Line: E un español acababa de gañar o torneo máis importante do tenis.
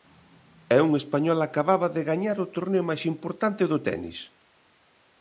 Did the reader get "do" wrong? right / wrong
right